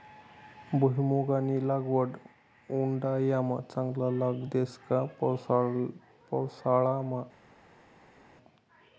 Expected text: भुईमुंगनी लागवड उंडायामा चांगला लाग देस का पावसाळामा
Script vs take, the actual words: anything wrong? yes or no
no